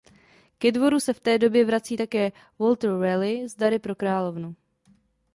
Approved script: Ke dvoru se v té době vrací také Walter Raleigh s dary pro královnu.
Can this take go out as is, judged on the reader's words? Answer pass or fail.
pass